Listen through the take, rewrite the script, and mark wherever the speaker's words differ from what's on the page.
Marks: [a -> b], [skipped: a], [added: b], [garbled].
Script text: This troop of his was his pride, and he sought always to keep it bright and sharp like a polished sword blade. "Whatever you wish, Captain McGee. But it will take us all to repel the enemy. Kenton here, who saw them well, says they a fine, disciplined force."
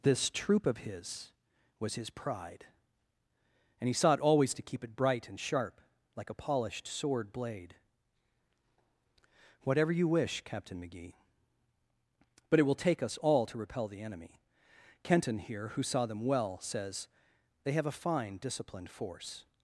This troop of his was his pride, and he sought always to keep it bright and sharp like a polished sword blade. "Whatever you wish, Captain McGee. But it will take us all to repel the enemy. Kenton here, who saw them well, says they [added: have] a fine, disciplined force."